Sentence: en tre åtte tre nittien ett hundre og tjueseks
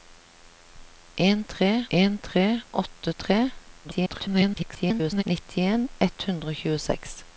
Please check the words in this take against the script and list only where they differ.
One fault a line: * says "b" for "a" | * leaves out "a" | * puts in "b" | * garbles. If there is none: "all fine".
* puts in "en tre"
* garbles